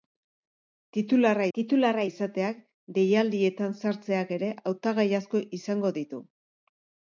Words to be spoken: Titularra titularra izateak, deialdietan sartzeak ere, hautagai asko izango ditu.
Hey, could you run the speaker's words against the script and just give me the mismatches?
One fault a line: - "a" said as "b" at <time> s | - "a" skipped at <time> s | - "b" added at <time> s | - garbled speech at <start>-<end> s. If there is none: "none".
none